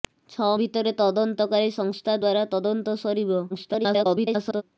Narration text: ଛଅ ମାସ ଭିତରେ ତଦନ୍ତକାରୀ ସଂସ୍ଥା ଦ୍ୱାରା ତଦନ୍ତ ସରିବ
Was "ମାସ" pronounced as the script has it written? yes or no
no